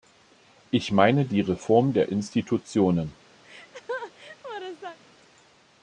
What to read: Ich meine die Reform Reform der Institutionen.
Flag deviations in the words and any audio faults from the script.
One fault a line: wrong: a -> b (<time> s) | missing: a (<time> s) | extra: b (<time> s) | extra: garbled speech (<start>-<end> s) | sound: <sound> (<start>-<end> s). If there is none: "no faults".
missing: Reform (1.9 s)
sound: laugh (3.4-5.0 s)